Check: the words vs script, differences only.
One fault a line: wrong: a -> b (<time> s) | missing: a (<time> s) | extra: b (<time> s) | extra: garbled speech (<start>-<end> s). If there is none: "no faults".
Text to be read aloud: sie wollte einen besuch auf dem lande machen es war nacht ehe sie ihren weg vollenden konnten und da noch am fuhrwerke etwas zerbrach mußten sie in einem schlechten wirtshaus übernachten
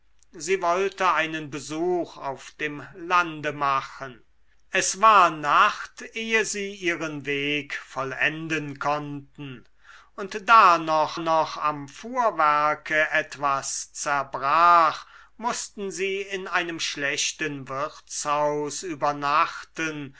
extra: noch (11.2 s)